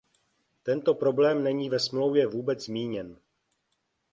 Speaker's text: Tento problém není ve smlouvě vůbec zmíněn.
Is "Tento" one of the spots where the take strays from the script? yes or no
no